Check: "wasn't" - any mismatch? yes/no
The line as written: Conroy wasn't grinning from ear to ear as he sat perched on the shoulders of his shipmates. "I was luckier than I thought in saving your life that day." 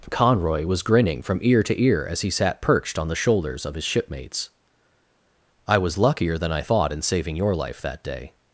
yes